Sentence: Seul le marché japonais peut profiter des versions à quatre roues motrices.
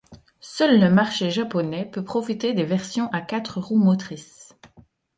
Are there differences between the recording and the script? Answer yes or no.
no